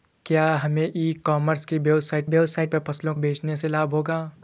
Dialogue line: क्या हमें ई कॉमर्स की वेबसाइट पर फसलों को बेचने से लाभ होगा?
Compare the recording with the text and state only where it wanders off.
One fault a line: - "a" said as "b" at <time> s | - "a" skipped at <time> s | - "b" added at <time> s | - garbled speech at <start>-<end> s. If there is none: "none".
- "वेबसाइट" added at 2.3 s
- "को" skipped at 3.1 s